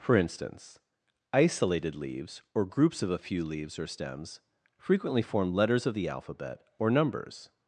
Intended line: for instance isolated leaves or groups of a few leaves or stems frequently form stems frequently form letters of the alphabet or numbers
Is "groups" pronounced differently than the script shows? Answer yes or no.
no